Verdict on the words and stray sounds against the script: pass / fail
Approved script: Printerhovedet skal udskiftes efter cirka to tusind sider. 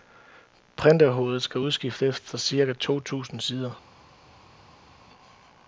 pass